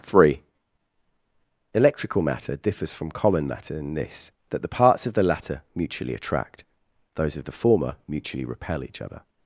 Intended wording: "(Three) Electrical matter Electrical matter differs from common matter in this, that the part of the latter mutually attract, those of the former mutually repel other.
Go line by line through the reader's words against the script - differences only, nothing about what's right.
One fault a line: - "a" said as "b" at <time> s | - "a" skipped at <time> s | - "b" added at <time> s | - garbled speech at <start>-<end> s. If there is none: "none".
- "Electrical matter" skipped at 2.5 s
- "part" said as "parts" at 4.7 s
- "each" added at 8.8 s